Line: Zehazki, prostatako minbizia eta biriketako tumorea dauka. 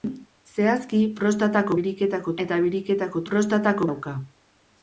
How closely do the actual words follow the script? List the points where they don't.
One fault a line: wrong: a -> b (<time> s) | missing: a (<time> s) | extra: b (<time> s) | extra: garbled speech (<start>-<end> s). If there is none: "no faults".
wrong: minbizia -> biriketako (1.8 s)
wrong: tumorea -> prostatako (3.3 s)